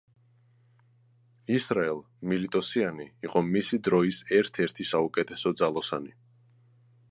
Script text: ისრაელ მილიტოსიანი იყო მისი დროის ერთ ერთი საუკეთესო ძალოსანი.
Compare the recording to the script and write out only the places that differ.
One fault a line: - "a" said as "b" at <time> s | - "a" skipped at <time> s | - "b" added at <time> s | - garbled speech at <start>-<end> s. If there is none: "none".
none